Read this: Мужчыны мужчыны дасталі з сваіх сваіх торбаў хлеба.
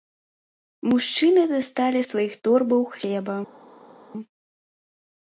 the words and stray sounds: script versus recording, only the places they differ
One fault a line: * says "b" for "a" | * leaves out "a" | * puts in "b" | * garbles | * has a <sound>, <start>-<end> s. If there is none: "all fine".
* leaves out "мужчыны"
* leaves out "сваіх"